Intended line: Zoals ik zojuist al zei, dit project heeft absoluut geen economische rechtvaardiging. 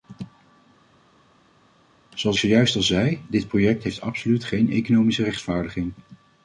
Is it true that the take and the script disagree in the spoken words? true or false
true